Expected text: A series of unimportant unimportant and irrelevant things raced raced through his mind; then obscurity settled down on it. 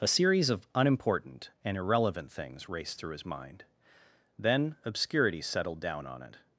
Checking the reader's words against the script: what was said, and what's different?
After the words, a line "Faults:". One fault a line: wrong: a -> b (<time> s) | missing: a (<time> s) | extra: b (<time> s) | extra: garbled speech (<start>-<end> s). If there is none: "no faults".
A series of unimportant and irrelevant things raced through his mind; then obscurity settled down on it.
Faults:
missing: unimportant (1.5 s)
missing: raced (3.0 s)